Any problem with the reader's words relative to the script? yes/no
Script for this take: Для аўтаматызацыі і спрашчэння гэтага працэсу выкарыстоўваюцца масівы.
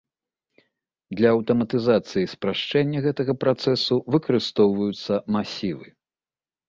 no